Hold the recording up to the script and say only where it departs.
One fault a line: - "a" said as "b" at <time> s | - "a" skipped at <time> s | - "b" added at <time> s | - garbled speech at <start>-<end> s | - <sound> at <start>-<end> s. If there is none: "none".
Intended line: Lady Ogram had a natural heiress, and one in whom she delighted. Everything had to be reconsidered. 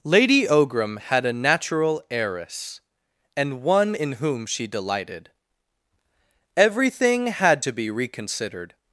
none